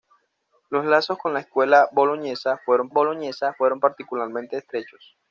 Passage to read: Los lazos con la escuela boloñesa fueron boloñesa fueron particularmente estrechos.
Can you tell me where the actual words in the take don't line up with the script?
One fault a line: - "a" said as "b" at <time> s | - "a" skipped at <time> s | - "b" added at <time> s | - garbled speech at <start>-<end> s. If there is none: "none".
none